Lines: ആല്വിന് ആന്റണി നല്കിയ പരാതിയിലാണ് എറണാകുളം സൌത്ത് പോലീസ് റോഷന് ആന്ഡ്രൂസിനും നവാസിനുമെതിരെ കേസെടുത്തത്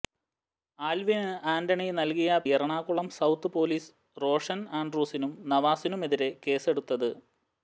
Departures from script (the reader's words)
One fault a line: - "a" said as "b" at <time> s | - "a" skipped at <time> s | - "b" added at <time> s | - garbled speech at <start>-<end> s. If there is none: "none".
- "പരാതിയിലാണ്" skipped at 2.4 s